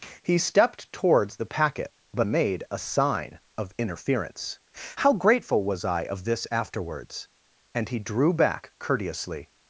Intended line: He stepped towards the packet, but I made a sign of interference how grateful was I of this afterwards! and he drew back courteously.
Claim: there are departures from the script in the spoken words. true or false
true